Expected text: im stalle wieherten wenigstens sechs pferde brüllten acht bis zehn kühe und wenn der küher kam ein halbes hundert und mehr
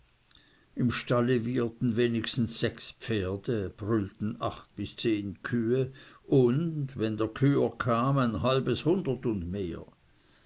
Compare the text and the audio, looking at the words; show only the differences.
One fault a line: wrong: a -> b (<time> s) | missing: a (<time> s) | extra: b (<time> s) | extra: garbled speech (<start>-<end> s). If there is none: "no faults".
no faults